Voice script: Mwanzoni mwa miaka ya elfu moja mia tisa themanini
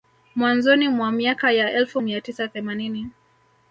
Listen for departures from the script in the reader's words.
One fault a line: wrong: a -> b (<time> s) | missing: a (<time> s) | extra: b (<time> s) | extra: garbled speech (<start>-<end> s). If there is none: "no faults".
missing: moja (2.0 s)